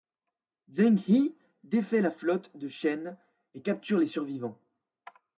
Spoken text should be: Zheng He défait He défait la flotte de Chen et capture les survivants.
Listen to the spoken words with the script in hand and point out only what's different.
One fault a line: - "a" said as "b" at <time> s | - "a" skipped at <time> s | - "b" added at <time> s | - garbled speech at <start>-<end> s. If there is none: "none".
- "He défait" skipped at 2.0 s